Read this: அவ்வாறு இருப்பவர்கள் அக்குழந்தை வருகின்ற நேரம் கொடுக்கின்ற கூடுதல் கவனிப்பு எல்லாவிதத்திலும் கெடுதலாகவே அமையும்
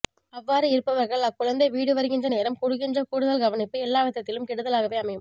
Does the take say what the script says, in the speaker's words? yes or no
no